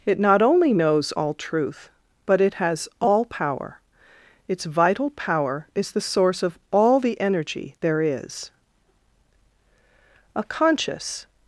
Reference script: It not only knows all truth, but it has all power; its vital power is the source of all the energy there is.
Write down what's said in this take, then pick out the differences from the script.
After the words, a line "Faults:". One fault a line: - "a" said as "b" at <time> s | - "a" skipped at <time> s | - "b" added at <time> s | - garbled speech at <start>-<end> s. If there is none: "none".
It not only knows all truth, but it has all power; its vital power is the source of all the energy there is. A conscious
Faults:
- "A conscious" added at 10.4 s